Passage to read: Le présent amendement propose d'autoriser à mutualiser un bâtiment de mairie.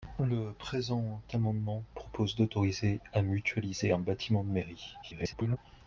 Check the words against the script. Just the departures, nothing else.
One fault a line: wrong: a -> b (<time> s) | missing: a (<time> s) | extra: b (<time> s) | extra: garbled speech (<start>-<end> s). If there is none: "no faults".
extra: garbled speech (5.0-5.6 s)